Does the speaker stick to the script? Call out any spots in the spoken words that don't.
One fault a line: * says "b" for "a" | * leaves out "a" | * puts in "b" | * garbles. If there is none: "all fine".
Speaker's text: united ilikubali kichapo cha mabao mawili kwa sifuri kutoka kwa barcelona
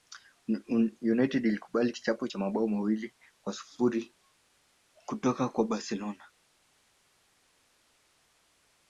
all fine